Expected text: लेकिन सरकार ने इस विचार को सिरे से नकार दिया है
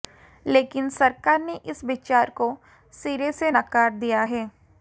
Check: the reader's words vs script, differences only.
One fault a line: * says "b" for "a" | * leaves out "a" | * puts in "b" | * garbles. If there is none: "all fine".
all fine